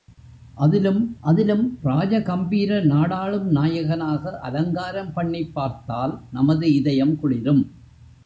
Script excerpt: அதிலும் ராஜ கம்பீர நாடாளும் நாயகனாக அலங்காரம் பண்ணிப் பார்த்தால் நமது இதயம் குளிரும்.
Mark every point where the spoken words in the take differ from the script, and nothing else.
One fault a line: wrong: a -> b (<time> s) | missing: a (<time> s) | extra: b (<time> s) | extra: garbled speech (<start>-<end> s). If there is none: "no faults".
extra: அதிலும் (1.2 s)